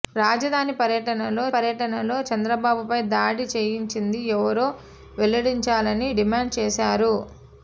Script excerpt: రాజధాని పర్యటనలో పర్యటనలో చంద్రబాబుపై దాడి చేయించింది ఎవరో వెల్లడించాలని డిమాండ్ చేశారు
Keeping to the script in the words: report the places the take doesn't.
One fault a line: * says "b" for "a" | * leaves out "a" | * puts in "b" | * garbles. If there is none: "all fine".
all fine